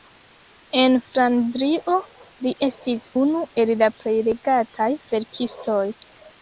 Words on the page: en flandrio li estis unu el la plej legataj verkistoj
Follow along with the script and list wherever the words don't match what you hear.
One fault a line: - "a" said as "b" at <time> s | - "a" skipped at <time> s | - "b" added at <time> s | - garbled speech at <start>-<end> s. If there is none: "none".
none